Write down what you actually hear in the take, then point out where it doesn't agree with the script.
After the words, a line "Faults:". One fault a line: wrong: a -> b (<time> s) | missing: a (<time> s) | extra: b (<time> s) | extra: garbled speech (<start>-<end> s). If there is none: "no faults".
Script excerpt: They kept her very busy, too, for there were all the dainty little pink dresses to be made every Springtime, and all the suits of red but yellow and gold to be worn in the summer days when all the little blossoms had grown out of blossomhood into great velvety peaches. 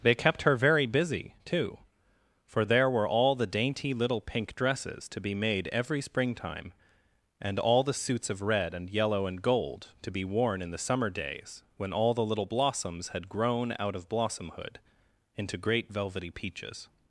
They kept her very busy, too, for there were all the dainty little pink dresses to be made every Springtime, and all the suits of red and yellow and gold to be worn in the summer days when all the little blossoms had grown out of blossomhood into great velvety peaches.
Faults:
wrong: but -> and (8.7 s)